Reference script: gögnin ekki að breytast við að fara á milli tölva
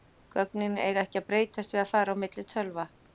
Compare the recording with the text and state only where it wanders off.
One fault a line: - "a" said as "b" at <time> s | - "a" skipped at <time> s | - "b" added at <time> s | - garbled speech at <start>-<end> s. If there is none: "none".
- "eiga" added at 0.8 s